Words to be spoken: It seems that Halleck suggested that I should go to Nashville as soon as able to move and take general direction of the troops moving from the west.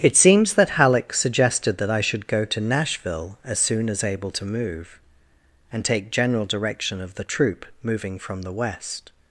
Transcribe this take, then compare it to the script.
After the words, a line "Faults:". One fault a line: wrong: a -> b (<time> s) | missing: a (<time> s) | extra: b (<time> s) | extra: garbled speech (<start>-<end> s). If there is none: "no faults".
It seems that Halleck suggested that I should go to Nashville as soon as able to move and take general direction of the troop moving from the west.
Faults:
wrong: troops -> troop (7.2 s)